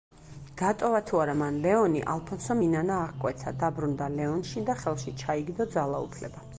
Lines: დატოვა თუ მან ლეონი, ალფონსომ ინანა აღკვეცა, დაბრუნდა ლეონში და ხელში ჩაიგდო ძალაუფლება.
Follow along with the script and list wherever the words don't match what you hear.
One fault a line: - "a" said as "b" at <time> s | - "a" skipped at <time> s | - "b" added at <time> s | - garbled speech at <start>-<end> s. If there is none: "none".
- "არა" added at 1.2 s